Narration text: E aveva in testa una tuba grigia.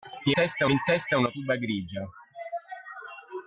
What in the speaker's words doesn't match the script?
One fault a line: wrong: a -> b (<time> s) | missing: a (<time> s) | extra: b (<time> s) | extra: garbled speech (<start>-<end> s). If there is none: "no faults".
wrong: aveva -> testa (0.3 s)